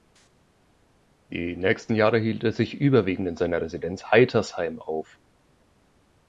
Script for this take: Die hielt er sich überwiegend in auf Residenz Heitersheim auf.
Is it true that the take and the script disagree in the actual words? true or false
true